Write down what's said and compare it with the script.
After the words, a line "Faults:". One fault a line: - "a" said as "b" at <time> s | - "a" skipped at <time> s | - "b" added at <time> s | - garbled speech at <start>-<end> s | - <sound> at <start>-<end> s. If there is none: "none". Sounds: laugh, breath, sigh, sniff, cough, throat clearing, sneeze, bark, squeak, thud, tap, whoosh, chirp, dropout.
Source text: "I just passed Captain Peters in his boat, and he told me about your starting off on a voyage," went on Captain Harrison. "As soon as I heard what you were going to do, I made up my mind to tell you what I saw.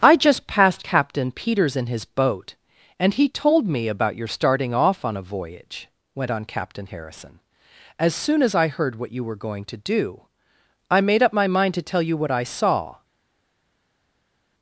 "I just passed Captain Peters in his boat, and he told me about your starting off on a voyage," went on Captain Harrison. "As soon as I heard what you were going to do, I made up my mind to tell you what I saw.
Faults:
none